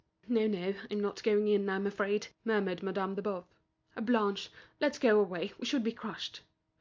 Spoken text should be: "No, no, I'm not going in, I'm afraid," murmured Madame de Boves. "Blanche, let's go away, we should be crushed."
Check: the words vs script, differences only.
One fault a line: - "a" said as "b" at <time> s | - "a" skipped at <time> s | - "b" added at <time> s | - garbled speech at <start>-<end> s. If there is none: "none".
none